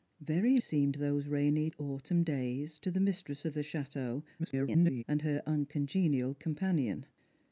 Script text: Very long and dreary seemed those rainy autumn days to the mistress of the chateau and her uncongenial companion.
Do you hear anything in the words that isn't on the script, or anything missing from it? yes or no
yes